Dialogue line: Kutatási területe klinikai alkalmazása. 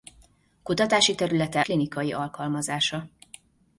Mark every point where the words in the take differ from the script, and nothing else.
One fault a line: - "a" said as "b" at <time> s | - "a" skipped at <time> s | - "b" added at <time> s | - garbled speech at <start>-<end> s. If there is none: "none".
none